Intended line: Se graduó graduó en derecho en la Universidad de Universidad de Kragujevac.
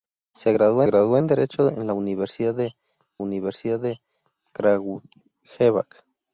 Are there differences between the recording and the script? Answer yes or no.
no